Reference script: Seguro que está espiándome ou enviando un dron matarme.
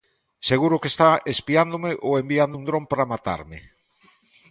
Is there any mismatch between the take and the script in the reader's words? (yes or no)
yes